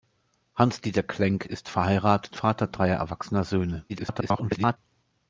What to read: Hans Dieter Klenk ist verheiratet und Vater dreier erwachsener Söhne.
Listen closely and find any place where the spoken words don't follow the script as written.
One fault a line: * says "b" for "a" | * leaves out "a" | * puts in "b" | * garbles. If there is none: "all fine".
* leaves out "und"
* garbles